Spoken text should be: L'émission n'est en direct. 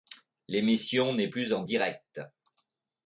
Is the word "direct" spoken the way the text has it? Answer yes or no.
yes